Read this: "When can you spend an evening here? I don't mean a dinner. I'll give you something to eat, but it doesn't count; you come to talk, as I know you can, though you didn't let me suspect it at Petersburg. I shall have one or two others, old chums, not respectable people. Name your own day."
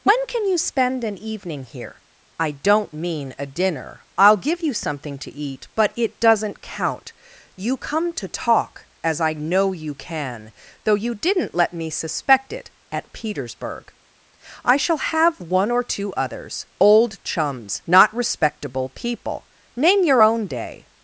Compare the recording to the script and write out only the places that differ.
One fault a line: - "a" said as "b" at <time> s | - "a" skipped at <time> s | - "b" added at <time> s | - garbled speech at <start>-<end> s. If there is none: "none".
none